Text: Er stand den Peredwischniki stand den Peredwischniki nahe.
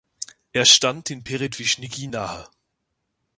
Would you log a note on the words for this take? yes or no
yes